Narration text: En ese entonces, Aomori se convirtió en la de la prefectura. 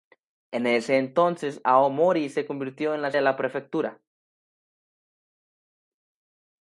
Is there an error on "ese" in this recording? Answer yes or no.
no